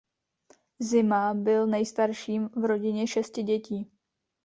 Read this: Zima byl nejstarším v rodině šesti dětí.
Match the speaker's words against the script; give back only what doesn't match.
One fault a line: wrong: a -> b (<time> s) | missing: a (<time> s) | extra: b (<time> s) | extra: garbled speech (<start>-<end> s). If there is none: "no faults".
no faults